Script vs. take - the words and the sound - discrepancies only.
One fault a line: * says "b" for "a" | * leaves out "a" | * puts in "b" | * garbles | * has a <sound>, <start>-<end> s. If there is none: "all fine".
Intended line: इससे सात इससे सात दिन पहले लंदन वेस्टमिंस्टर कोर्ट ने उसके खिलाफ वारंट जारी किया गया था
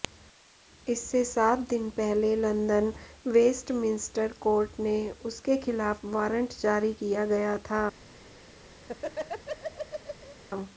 * leaves out "इससे सात"
* has a laugh, 8.8-10.4 s